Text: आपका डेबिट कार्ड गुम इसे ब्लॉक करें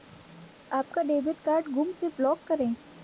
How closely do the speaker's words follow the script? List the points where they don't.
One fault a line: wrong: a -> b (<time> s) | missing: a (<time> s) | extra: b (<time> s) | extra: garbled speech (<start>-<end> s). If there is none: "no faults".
no faults